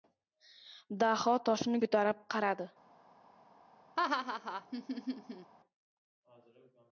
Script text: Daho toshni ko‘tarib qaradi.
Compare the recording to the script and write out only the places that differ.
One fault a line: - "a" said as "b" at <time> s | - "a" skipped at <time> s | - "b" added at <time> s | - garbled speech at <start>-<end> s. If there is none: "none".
none